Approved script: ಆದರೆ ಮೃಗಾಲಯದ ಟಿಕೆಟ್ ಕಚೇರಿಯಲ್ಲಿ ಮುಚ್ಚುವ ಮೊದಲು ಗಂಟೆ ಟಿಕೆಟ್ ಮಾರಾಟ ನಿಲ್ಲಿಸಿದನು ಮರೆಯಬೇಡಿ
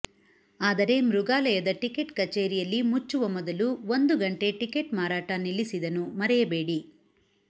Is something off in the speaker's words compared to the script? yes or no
yes